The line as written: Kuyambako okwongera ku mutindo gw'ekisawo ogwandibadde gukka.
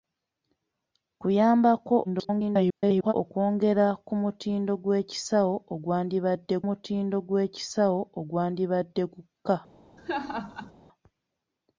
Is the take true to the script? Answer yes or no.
no